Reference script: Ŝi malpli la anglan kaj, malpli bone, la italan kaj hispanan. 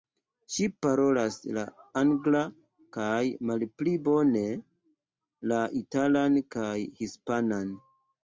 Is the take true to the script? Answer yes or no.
no